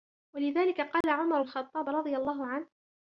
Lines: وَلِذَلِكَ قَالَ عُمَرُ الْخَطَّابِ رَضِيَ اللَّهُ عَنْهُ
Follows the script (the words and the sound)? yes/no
no